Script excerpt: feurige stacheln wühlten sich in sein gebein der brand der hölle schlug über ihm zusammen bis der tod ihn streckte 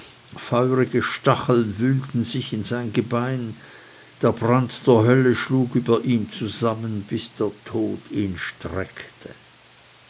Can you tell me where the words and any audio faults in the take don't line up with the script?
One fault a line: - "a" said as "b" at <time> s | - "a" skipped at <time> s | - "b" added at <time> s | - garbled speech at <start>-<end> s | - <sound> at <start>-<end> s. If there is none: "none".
none